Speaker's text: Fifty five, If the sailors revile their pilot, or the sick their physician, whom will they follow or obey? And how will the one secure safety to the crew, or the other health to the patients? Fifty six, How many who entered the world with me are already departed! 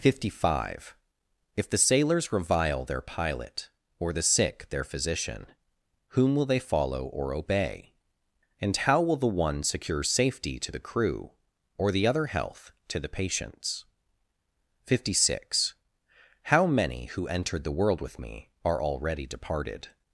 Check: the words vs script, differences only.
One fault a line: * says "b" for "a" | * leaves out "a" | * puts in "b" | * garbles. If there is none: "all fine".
all fine